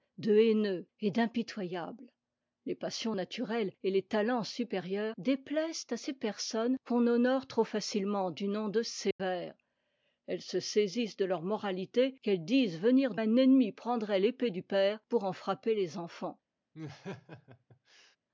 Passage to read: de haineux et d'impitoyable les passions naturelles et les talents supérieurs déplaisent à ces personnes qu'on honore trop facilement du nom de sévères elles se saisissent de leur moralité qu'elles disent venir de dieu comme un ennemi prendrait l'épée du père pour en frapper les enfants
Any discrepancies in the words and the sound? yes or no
yes